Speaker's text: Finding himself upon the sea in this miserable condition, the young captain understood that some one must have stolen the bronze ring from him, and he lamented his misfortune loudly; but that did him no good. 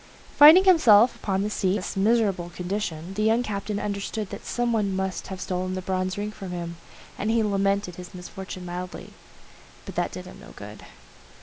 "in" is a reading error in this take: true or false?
true